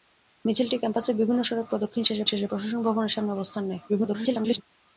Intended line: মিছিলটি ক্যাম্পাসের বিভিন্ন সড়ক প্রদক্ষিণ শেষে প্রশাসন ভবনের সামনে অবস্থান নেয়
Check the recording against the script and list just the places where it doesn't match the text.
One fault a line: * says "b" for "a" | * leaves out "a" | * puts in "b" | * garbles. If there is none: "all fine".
* puts in "শেষে"
* garbles